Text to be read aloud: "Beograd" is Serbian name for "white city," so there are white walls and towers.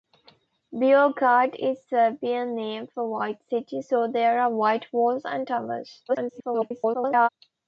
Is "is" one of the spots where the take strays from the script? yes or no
no